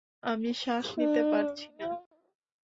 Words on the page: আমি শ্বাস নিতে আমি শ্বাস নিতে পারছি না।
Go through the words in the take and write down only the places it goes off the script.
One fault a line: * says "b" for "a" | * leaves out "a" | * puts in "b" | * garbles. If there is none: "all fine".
* leaves out "আমি শ্বাস নিতে"